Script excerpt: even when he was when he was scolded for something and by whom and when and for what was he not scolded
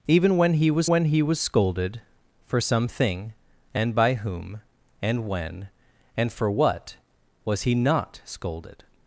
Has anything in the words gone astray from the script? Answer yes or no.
no